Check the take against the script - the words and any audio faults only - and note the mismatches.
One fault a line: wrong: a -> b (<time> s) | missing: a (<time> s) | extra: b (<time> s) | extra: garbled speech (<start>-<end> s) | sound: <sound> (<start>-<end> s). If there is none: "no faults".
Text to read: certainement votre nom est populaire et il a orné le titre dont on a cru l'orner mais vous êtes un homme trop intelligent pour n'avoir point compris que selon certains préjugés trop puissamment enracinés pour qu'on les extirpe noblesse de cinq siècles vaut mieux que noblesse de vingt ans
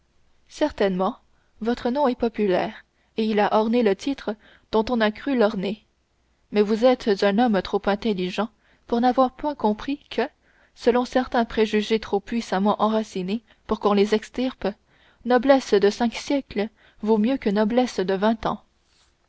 no faults